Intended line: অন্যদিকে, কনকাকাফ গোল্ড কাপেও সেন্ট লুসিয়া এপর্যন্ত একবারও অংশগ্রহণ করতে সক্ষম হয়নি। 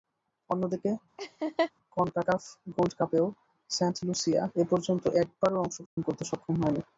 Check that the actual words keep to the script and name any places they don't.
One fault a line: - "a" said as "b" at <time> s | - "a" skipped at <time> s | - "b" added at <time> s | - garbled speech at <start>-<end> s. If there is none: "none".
none